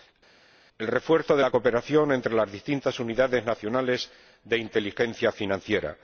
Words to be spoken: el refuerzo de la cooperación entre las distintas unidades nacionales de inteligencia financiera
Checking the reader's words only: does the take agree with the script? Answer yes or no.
yes